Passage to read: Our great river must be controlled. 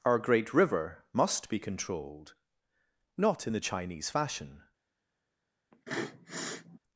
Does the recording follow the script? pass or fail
fail